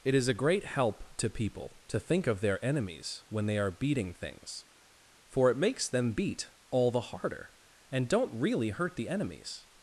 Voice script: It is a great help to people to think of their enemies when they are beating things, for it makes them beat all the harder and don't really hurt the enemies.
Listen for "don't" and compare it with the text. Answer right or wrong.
right